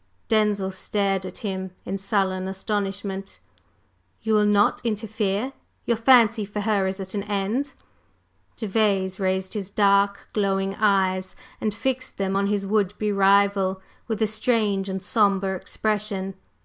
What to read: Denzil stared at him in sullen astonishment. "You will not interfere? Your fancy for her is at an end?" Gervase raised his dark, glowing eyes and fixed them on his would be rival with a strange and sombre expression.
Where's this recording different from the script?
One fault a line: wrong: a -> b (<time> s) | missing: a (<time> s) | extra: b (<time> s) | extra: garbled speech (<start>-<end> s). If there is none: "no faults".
no faults